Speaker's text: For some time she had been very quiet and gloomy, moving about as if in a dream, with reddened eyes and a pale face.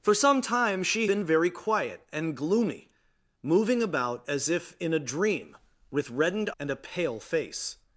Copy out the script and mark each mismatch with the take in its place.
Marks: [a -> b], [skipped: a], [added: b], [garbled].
For some time she [skipped: had] been very quiet and gloomy, moving about as if in a dream, with reddened [skipped: eyes] and a pale face.